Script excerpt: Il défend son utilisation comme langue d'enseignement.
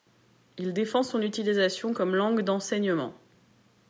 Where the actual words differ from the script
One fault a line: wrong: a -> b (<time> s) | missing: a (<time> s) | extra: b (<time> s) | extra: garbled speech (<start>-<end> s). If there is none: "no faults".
no faults